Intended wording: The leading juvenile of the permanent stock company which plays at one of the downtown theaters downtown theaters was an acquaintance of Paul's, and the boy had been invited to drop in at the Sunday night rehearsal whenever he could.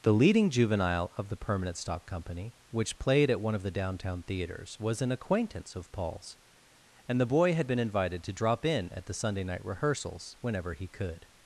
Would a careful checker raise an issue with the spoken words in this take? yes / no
yes